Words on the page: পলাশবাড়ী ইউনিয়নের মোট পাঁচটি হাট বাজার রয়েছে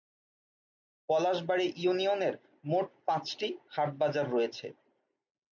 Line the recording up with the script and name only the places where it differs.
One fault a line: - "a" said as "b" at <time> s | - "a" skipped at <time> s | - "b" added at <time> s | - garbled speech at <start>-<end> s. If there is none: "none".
none